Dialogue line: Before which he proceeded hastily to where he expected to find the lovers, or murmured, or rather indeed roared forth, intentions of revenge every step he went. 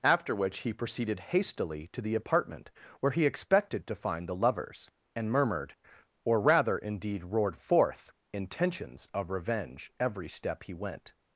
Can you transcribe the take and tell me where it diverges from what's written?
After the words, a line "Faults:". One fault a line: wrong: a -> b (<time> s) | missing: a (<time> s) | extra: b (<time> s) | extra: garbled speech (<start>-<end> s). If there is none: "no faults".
After which he proceeded hastily to the apartment where he expected to find the lovers, and murmured, or rather indeed roared forth, intentions of revenge every step he went.
Faults:
wrong: Before -> After (0.0 s)
extra: the apartment (2.0 s)
wrong: or -> and (5.2 s)